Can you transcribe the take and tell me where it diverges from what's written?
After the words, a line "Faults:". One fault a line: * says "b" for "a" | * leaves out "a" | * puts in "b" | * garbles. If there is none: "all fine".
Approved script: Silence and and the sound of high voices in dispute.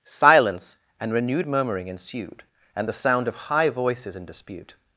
Silence and renewed murmuring ensued, and the sound of high voices in dispute.
Faults:
* puts in "renewed murmuring ensued"